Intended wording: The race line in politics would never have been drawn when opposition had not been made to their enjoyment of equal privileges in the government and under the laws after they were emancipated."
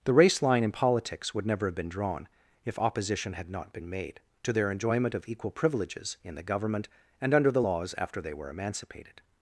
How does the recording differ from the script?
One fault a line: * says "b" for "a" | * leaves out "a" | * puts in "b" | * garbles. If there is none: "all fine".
* says "if" for "when"